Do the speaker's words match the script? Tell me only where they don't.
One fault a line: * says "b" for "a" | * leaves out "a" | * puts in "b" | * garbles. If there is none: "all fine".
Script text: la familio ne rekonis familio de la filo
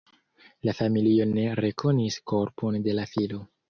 * says "korpon" for "familio"